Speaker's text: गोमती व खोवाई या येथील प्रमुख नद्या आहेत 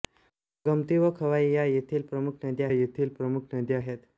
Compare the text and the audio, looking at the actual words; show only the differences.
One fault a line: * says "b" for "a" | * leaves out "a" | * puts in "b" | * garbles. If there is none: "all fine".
* puts in "येथील प्रमुख नद्या"